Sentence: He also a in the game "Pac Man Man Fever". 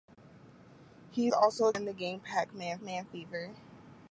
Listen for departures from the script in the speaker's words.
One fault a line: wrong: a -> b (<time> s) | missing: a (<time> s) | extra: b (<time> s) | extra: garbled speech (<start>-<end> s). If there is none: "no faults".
no faults